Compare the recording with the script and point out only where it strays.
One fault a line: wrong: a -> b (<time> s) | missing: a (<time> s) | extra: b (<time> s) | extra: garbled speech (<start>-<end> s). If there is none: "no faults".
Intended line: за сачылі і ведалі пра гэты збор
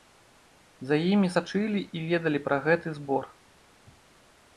extra: імі (1.1 s)